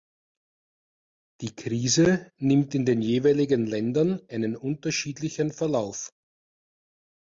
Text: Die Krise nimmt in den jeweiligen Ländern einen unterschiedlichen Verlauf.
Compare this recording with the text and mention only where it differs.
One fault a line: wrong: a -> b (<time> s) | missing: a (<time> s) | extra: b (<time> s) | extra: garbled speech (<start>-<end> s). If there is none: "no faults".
no faults